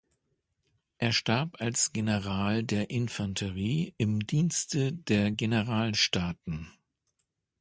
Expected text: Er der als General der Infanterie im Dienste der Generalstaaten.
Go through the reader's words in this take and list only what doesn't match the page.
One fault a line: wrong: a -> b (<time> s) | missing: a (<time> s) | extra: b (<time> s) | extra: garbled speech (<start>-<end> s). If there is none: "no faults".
wrong: der -> starb (1.1 s)